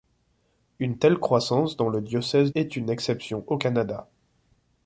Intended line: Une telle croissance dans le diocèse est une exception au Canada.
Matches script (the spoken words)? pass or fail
pass